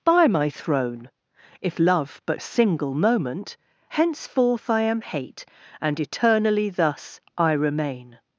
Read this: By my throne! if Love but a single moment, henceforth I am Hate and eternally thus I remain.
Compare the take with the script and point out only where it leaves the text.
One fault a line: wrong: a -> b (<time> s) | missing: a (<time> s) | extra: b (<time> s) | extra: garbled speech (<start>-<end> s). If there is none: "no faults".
no faults